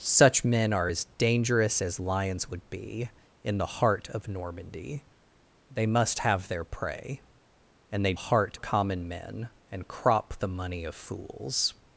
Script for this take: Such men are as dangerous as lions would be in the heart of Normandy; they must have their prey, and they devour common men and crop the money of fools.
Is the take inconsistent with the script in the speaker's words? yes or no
yes